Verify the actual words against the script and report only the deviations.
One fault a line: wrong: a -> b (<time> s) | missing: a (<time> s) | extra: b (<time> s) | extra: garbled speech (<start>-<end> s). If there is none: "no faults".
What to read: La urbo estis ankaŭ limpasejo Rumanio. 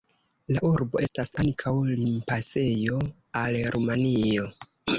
wrong: estis -> estas (1.0 s)
extra: al (3.5 s)